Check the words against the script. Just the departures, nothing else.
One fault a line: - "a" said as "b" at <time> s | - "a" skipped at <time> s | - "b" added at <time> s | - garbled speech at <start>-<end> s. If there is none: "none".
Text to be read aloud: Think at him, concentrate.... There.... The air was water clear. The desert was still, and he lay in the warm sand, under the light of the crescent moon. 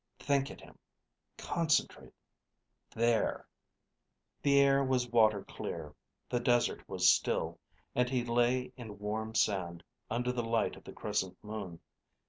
none